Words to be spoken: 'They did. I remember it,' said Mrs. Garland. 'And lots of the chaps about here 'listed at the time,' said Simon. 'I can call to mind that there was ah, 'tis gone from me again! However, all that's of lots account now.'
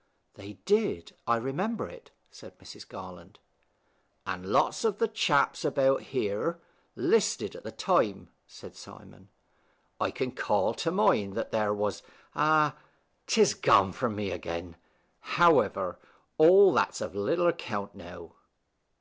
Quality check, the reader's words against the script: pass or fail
fail